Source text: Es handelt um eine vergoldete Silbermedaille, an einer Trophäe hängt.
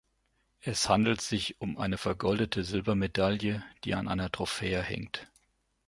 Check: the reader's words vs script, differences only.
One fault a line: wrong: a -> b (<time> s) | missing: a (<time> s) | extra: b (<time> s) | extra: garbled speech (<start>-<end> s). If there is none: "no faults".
extra: sich (1.2 s)
extra: die (3.8 s)